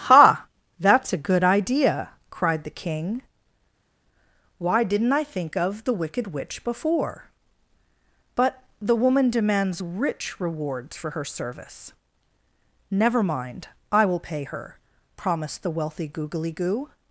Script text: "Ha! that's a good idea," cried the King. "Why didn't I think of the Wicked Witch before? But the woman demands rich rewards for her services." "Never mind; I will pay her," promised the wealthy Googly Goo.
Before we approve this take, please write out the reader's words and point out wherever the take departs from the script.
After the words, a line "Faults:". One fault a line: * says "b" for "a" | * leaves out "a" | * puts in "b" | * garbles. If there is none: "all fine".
"Ha! that's a good idea," cried the King. "Why didn't I think of the Wicked Witch before? But the woman demands rich rewards for her service." "Never mind; I will pay her," promised the wealthy Googly Goo.
Faults:
* says "service" for "services"